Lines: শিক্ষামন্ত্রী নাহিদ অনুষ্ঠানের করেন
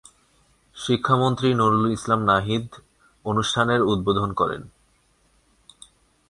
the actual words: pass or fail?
fail